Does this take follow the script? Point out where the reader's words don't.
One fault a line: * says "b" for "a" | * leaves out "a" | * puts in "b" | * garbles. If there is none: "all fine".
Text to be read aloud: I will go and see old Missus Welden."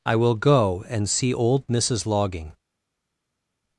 * says "Logging" for "Welden"